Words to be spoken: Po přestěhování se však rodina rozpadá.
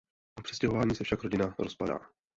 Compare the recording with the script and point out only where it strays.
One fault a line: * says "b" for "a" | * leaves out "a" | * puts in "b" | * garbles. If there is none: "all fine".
all fine